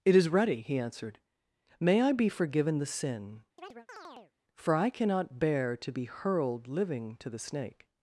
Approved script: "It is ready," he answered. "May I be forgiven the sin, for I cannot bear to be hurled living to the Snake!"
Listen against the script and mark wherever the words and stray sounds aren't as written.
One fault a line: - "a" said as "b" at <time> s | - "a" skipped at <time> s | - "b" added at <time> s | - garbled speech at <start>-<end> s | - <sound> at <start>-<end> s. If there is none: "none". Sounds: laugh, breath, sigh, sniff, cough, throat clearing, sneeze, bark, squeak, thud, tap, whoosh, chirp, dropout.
- chirp at 3.6-4.3 s